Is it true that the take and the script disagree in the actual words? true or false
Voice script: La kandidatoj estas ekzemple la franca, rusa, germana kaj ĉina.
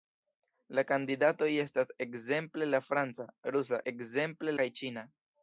true